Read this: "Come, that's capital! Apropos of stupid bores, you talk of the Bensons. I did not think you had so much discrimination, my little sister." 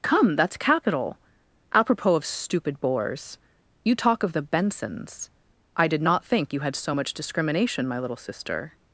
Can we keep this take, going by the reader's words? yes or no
yes